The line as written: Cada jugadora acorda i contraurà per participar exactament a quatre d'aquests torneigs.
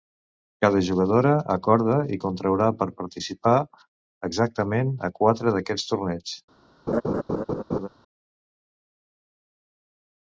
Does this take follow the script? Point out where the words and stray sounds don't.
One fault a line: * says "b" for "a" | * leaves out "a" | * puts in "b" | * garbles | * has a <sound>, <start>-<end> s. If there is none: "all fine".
* has a laugh, 6.9-7.9 s